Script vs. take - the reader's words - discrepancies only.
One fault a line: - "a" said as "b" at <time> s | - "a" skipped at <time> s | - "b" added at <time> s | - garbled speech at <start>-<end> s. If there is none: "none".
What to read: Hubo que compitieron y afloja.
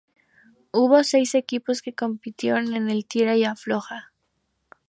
- "seis equipos" added at 1.0 s
- "en el tira" added at 2.7 s